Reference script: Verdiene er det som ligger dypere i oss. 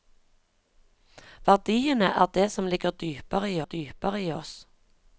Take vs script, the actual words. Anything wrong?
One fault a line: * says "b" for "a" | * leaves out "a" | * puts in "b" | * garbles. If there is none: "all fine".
* puts in "dypere i"